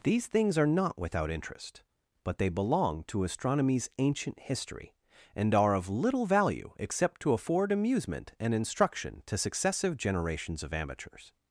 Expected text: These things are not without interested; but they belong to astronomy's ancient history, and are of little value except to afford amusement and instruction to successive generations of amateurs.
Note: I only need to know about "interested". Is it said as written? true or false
false